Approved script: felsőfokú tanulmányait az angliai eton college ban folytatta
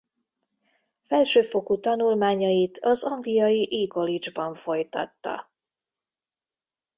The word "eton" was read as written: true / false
false